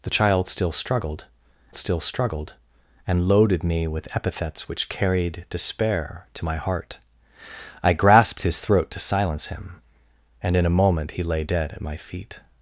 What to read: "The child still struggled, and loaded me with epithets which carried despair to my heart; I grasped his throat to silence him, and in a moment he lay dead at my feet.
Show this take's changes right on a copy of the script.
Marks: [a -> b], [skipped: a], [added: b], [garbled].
"The child still struggled, [added: still struggled] and loaded me with epithets which carried despair to my heart; I grasped his throat to silence him, and in a moment he lay dead at my feet.